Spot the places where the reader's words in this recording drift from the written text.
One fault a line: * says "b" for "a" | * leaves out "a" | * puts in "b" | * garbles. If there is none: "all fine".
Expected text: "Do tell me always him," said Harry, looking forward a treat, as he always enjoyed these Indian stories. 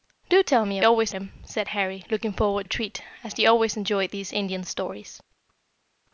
all fine